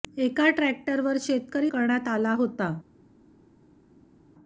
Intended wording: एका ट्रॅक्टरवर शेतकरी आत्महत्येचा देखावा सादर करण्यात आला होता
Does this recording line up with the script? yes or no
no